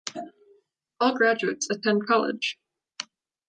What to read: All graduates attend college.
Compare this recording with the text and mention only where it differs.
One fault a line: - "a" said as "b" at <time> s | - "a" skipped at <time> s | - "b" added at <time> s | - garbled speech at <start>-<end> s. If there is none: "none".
none